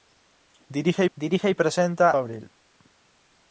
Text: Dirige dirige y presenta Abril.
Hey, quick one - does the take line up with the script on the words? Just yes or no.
yes